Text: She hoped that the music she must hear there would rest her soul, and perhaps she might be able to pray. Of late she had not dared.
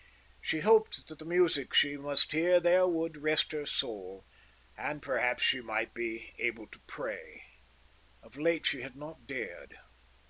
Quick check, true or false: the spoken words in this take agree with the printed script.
true